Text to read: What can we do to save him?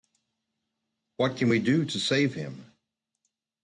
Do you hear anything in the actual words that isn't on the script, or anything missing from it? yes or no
no